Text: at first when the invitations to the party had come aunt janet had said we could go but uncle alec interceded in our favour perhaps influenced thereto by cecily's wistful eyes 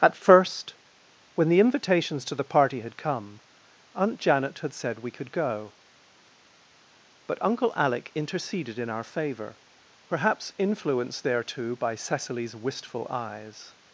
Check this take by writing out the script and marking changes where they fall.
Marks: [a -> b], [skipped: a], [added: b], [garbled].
at first when the invitations to the party had come aunt janet had said we could go but uncle alec interceded in our favour perhaps influenced thereto by cecily's wistful eyes